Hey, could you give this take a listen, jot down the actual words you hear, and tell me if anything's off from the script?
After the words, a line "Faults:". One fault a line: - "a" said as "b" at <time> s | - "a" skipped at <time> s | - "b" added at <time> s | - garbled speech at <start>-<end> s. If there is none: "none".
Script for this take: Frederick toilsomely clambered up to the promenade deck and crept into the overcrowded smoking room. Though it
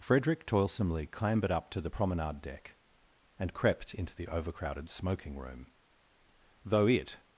Frederick toilsomely clambered up to the promenade deck and crept into the overcrowded smoking room. Though it
Faults:
none